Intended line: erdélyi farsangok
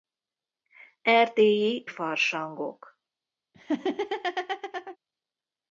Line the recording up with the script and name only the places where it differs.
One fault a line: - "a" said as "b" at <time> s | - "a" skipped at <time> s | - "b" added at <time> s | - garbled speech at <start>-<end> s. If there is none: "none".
none